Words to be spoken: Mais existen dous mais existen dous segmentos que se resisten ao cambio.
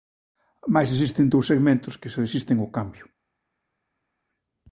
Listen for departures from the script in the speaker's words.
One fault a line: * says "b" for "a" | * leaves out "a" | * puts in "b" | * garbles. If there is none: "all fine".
* leaves out "mais existen dous"